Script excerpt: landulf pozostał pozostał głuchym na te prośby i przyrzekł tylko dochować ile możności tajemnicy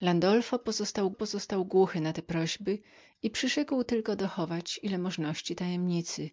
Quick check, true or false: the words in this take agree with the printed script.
true